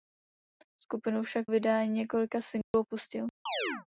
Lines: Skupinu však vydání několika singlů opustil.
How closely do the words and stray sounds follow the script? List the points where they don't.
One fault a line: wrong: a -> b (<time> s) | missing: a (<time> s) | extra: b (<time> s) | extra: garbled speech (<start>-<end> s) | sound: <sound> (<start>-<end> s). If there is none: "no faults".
sound: dropout (2.6-2.7 s)
sound: chirp (3.5-3.9 s)